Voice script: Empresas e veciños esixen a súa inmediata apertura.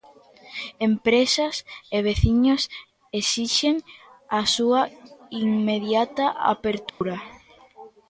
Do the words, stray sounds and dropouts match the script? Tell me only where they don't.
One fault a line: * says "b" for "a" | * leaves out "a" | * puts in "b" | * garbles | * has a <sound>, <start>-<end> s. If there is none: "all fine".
* has a dropout, 6.9-7.0 s